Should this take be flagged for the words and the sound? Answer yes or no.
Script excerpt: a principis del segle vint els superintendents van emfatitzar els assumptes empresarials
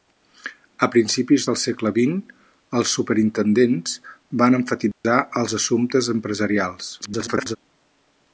yes